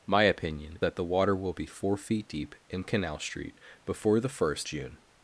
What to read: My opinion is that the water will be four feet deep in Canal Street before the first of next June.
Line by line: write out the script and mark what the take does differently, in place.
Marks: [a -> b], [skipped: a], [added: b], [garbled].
My opinion [skipped: is] that the water will be four feet deep in Canal Street before the first [skipped: of next] June.